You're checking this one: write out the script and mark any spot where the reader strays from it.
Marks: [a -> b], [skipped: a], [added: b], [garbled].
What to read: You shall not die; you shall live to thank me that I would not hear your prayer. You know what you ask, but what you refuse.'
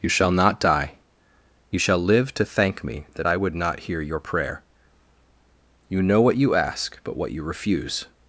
You shall not die; you shall live to thank me that I would not hear your prayer. You know what you ask, but what you refuse.'